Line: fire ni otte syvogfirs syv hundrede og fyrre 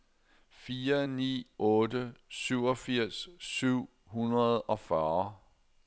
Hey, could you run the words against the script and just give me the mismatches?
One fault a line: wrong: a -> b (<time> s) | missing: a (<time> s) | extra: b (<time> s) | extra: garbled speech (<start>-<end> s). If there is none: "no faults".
no faults